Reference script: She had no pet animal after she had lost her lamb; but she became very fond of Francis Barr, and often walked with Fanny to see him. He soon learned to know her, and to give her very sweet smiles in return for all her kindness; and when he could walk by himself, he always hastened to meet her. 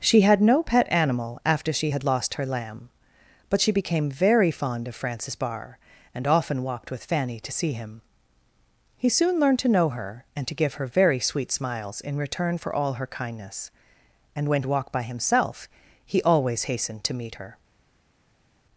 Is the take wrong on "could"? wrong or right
wrong